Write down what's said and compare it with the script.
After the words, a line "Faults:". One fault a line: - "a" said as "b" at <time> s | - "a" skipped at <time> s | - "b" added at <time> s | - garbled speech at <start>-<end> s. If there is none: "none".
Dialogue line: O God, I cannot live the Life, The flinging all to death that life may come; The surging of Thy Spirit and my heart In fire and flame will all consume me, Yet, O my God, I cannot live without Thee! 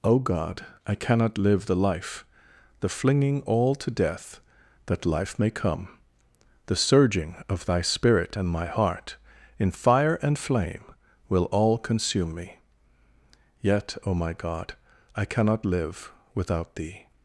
O God, I cannot live the Life, The flinging all to death that life may come; The surging of Thy Spirit and my heart In fire and flame will all consume me, Yet, O my God, I cannot live without Thee!
Faults:
none